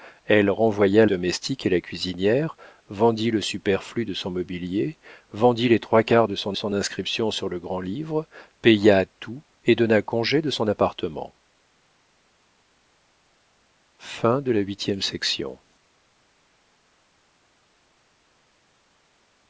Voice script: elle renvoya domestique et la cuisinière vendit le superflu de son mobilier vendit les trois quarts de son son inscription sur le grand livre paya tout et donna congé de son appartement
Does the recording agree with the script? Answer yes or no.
yes